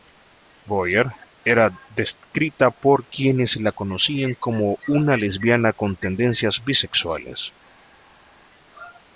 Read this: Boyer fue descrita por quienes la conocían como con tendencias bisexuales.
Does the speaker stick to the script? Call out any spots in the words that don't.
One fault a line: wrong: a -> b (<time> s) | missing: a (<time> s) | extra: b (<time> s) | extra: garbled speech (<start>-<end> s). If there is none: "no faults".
wrong: fue -> era (1.4 s)
extra: una lesbiana (4.9 s)